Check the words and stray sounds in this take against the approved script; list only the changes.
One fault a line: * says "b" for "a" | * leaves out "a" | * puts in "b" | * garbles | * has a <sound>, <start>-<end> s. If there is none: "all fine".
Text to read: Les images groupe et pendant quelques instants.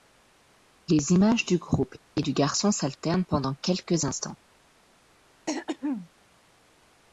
* puts in "du"
* puts in "du garçon s'alternent"
* has a throat clearing, 5.5-6.1 s